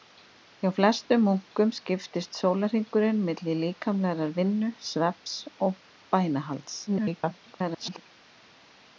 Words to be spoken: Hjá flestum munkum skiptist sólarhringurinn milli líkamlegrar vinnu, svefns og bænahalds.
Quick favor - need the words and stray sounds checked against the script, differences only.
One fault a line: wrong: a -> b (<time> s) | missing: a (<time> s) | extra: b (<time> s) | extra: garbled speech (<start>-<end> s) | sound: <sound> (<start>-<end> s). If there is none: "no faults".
extra: garbled speech (6.9-8.0 s)